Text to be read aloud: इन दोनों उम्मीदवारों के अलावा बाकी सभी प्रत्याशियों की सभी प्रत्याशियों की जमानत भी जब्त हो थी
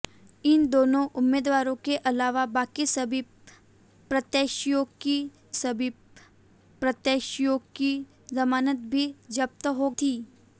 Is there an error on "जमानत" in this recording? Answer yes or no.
no